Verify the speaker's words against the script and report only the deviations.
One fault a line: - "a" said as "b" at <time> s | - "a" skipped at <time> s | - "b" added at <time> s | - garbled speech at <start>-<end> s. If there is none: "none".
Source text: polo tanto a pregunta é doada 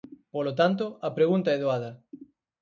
none